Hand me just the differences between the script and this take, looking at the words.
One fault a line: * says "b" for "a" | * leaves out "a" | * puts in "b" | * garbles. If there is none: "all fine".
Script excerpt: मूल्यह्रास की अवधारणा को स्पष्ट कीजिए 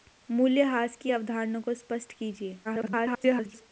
* garbles